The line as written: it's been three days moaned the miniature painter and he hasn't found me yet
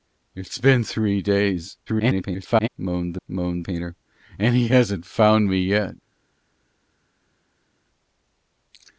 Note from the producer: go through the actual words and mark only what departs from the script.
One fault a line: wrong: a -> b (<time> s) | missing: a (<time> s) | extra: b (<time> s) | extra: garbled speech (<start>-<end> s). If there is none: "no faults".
extra: garbled speech (1.9-2.7 s)
wrong: miniature -> moaned (3.3 s)